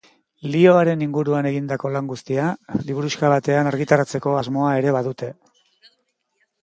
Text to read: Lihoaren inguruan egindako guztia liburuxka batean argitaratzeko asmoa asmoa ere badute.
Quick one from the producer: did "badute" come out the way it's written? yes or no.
yes